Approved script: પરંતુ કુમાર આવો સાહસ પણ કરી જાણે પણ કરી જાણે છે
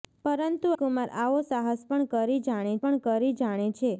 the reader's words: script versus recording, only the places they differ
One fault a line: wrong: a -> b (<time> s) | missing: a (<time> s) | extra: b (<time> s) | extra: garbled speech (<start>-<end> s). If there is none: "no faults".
no faults